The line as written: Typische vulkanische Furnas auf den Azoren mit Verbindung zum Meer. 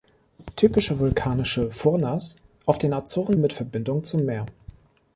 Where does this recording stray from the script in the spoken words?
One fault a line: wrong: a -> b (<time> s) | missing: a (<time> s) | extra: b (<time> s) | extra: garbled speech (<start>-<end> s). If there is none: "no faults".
no faults